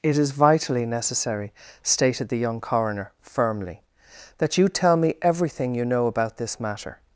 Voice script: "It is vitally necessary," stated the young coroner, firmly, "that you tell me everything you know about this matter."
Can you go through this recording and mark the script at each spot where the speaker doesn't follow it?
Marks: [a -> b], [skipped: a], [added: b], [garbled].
"It is vitally necessary," stated the young coroner, firmly, "that you tell me everything you know about this matter."